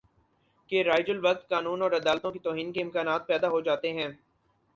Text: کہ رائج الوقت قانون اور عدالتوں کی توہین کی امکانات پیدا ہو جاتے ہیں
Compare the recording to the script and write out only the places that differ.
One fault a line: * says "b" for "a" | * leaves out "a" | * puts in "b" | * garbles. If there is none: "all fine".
* says "کے" for "کی"